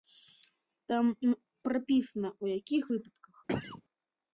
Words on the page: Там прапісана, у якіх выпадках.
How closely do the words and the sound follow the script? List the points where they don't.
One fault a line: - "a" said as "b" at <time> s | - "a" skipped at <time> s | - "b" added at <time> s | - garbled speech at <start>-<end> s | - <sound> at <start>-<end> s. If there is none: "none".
- cough at 3.5-3.8 s